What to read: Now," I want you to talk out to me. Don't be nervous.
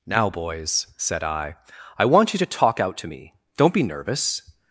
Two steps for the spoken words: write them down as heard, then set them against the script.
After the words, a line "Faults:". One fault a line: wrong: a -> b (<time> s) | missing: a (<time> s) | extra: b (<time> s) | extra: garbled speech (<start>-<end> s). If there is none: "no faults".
Now, boys," said I," I want you to talk out to me. Don't be nervous.
Faults:
extra: boys said I (0.3 s)